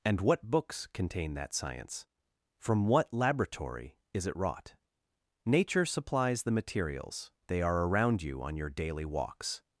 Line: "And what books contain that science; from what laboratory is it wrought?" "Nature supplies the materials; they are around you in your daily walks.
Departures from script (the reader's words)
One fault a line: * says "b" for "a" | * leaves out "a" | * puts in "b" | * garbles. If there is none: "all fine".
* says "on" for "in"